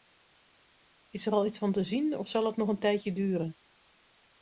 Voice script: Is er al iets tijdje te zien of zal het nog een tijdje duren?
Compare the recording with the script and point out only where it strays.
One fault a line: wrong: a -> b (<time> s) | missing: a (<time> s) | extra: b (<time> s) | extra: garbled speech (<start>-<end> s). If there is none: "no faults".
wrong: tijdje -> van (1.6 s)